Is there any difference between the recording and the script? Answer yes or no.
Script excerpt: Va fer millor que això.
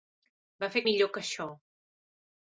no